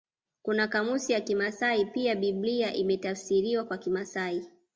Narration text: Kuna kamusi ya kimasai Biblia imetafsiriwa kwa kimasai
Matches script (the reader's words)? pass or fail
fail